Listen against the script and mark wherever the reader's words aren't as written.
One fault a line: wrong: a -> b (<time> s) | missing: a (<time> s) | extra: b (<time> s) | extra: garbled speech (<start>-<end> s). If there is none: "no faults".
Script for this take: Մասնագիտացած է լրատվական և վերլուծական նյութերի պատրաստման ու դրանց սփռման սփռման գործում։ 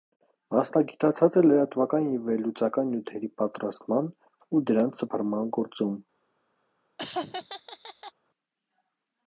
missing: սփռման (5.5 s)